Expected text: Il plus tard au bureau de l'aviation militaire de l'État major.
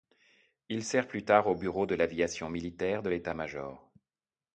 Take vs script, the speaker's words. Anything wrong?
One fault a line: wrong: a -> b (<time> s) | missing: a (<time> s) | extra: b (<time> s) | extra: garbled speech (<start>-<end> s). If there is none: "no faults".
extra: sert (0.8 s)